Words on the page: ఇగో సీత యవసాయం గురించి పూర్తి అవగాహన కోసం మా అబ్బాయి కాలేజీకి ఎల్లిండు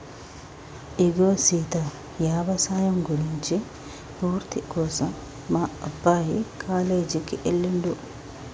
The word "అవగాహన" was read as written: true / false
false